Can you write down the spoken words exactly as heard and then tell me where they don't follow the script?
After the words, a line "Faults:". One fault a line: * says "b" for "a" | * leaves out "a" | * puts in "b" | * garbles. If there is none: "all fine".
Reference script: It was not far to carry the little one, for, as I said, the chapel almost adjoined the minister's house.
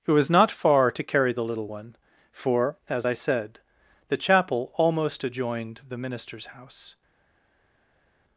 It was not far to carry the little one, for, as I said, the chapel almost adjoined the minister's house.
Faults:
all fine